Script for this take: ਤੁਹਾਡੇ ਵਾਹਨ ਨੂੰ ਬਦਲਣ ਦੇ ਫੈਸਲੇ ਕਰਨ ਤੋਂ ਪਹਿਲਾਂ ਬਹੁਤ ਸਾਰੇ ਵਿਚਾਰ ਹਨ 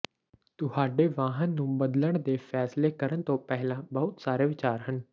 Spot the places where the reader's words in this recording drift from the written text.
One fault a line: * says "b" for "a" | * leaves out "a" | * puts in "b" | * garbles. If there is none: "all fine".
all fine